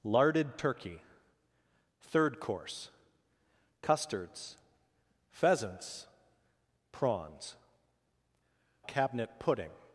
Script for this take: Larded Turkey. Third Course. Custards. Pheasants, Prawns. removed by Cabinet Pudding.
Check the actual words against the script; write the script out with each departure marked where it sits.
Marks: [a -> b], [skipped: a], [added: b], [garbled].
Larded Turkey. Third Course. Custards. Pheasants, Prawns. [skipped: removed by] Cabinet Pudding.